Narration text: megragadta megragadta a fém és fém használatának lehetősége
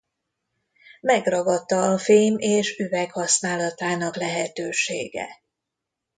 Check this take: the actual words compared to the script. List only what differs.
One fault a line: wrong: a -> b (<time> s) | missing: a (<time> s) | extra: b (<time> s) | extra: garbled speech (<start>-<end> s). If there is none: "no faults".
missing: megragadta (1.9 s)
wrong: fém -> üveg (2.8 s)